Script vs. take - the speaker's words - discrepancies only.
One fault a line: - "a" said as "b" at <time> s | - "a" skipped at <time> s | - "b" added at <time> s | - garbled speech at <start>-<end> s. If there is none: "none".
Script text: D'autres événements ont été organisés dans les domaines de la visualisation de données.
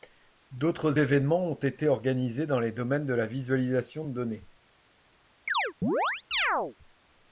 none